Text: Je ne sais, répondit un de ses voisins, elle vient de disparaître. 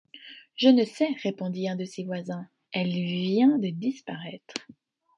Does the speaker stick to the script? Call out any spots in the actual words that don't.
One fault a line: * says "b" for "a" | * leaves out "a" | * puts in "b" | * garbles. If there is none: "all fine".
all fine